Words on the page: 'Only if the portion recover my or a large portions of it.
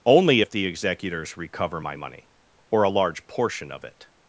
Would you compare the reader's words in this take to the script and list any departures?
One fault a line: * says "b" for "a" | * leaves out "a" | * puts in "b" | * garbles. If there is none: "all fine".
* says "executors" for "portion"
* puts in "money"
* says "portion" for "portions"